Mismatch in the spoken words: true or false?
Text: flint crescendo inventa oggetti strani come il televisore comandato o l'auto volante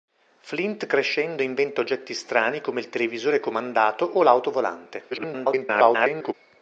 true